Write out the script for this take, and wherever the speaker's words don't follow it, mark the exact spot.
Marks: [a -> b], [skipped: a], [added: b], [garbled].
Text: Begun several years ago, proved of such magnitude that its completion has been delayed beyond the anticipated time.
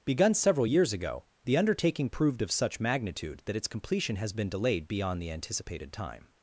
Begun several years ago, [added: the undertaking] proved of such magnitude that its completion has been delayed beyond the anticipated time.